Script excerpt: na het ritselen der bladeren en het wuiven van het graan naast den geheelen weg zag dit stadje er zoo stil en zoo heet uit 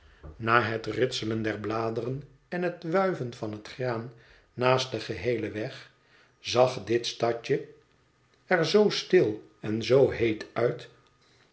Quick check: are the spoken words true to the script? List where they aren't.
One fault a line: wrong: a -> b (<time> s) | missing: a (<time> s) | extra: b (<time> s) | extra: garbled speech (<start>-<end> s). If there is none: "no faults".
no faults